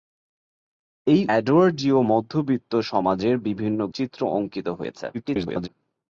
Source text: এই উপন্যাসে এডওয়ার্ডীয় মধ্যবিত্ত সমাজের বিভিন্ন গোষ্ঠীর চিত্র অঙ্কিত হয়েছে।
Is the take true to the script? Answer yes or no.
no